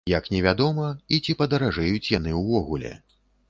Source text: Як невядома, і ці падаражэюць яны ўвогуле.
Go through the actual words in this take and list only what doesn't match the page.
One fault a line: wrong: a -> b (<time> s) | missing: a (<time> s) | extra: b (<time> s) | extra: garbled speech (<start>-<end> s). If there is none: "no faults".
no faults